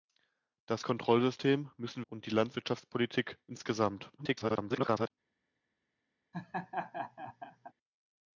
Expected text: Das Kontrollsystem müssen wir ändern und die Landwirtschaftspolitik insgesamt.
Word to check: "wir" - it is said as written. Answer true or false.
false